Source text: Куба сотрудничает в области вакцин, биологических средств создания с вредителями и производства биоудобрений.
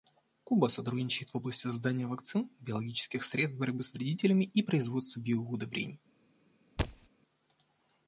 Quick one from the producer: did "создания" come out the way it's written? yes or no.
no